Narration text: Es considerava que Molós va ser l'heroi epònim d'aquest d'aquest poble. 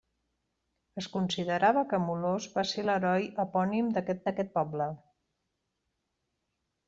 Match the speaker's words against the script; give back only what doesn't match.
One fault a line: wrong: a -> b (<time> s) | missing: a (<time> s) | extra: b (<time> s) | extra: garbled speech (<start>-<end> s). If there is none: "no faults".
no faults